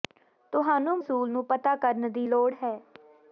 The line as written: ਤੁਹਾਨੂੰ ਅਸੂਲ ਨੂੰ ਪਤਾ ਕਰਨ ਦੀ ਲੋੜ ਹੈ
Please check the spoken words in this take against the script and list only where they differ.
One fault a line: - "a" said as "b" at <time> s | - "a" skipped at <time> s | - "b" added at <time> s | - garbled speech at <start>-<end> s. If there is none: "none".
none